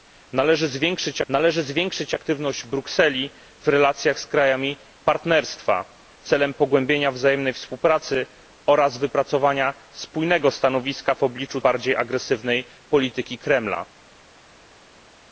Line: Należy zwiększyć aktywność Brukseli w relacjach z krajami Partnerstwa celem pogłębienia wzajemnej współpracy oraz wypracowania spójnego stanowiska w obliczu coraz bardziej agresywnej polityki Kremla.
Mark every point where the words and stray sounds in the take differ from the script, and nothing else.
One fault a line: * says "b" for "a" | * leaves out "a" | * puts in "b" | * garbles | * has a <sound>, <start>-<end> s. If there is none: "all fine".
* puts in "należy zwiększyć"
* leaves out "coraz"